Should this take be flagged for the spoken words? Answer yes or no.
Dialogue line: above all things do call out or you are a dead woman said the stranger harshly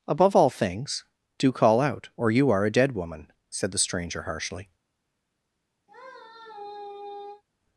no